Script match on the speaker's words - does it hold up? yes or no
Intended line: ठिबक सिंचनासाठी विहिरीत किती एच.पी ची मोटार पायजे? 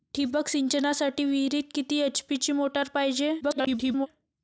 no